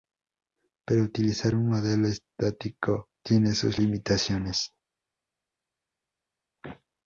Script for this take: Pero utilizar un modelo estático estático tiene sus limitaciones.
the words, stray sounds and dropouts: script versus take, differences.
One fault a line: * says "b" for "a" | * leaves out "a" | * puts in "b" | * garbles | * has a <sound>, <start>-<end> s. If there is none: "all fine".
* leaves out "estático"